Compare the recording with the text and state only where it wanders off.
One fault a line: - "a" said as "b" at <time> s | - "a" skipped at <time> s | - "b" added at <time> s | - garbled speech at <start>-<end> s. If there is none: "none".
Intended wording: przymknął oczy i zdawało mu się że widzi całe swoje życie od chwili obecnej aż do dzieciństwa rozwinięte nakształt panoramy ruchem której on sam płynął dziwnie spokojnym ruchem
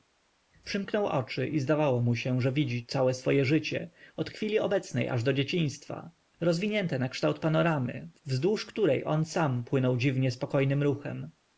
- "ruchem" said as "wzdłuż" at 8.2 s